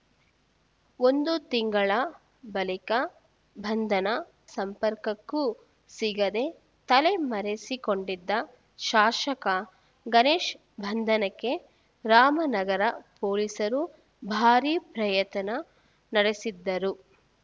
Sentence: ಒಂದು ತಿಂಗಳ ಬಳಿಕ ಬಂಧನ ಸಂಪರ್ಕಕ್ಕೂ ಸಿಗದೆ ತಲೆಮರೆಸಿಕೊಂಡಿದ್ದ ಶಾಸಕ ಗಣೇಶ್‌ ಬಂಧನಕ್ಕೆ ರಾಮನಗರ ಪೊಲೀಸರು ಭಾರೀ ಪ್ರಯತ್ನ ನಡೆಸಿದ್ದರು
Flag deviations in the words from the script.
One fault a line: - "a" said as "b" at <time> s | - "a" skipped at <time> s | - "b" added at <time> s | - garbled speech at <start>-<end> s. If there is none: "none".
none